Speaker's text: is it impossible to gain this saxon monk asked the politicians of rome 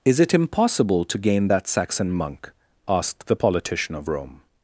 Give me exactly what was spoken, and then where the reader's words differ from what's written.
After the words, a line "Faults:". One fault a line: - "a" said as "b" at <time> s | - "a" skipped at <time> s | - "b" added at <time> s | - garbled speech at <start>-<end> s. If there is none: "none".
is it impossible to gain that saxon monk asked the politician of rome
Faults:
- "this" said as "that" at 1.5 s
- "politicians" said as "politician" at 3.3 s